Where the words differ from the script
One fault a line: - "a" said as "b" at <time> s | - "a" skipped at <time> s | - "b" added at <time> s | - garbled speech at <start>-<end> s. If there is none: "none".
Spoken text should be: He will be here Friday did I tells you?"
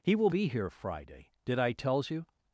none